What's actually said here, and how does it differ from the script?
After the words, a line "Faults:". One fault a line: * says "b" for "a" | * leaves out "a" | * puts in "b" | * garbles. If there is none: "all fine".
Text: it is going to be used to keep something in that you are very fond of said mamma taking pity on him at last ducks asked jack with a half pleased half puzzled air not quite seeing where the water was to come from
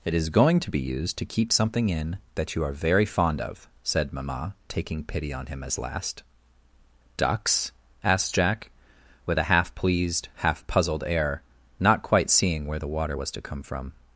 it is going to be used to keep something in that you are very fond of said mamma taking pity on him as last ducks asked jack with a half pleased half puzzled air not quite seeing where the water was to come from
Faults:
* says "as" for "at"